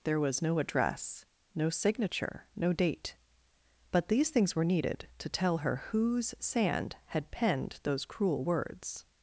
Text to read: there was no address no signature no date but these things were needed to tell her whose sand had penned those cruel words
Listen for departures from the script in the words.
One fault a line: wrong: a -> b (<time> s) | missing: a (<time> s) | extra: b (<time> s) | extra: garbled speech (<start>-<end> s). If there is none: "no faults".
no faults